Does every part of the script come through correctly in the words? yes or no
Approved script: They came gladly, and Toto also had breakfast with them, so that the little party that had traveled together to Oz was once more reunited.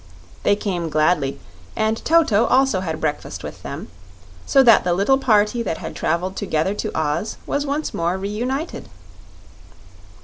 yes